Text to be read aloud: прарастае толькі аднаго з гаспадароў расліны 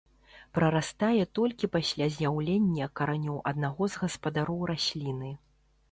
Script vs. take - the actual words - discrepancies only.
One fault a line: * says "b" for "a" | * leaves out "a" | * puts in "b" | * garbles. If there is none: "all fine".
* puts in "пасля з'яўлення каранёў"